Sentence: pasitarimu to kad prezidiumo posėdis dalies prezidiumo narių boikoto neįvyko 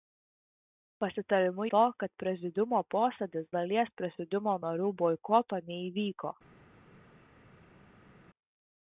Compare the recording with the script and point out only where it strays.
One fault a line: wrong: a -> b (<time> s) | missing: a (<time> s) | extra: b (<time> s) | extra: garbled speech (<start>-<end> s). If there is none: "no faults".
no faults